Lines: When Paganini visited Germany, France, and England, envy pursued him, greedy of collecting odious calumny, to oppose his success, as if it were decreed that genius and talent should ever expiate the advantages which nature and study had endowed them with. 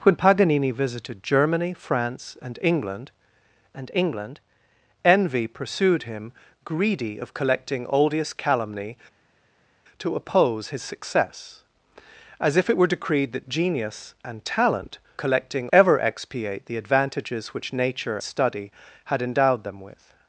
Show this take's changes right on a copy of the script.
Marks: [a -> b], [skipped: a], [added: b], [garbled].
When Paganini visited Germany, France, and England, [added: and England] envy pursued him, greedy of collecting odious calumny, to oppose his success, as if it were decreed that genius and talent [should -> collecting] ever expiate the advantages which nature [skipped: and] study had endowed them with.